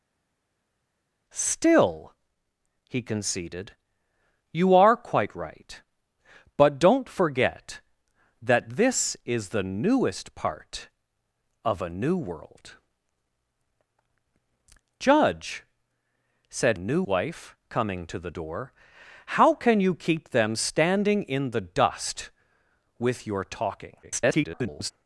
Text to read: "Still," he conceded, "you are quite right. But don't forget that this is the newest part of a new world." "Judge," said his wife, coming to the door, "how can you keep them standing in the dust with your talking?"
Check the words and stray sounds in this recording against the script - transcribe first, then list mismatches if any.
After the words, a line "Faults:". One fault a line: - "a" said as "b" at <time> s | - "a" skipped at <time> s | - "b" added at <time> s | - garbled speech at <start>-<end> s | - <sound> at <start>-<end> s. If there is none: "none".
"Still," he conceded, "you are quite right. But don't forget that this is the newest part of a new world." "Judge," said new wife, coming to the door, "how can you keep them standing in the dust with your talking?" [garbled]
Faults:
- "his" said as "new" at 16.8 s
- garbled speech at 24.0-24.9 s